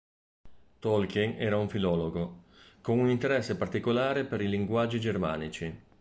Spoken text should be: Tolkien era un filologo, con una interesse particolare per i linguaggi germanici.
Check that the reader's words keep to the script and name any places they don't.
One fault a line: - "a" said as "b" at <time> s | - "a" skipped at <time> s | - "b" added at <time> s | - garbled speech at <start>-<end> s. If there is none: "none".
- "una" said as "un" at 3.0 s